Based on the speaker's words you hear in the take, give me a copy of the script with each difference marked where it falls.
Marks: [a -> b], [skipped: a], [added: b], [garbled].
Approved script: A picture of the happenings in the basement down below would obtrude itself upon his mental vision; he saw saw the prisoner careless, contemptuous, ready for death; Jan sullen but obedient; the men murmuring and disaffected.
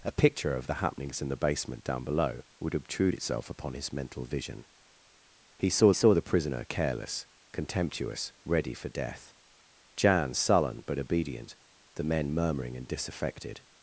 A picture of the happenings in the basement down below would obtrude itself upon his mental vision; he saw saw the prisoner careless, contemptuous, ready for death; Jan sullen but obedient; the men murmuring and disaffected.